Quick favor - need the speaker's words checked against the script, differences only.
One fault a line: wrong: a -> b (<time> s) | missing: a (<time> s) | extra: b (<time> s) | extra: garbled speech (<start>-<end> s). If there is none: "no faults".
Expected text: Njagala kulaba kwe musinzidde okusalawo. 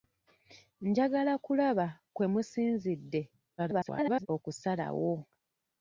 extra: garbled speech (3.6-4.3 s)